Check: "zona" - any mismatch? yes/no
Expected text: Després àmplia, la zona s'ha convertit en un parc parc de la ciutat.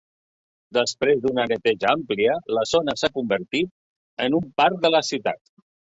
no